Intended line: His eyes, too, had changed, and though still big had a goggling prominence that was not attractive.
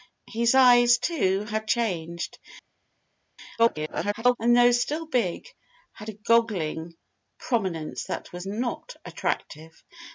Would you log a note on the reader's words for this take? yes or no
yes